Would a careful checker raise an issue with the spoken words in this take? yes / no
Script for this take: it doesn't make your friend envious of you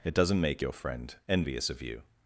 no